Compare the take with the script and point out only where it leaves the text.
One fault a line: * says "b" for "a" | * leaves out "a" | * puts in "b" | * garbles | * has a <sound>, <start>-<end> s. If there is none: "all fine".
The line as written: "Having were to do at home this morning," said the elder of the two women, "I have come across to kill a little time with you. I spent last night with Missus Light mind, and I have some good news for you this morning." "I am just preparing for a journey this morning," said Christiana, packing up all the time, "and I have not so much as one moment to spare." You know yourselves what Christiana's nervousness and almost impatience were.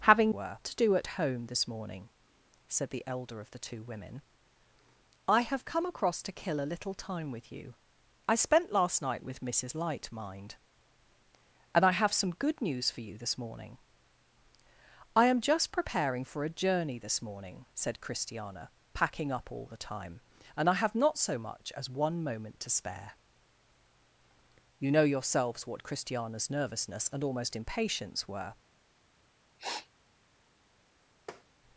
* has a sniff, 29.6-29.9 s
* has a tap, 31.3-31.4 s